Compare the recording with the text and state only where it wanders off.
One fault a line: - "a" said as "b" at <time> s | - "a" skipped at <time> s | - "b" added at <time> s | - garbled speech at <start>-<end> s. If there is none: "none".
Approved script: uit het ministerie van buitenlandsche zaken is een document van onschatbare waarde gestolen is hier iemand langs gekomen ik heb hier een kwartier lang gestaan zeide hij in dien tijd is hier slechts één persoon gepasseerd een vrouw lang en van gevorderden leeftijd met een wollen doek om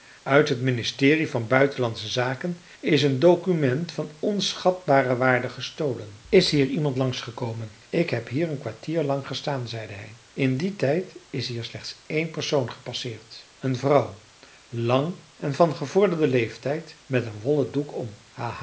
none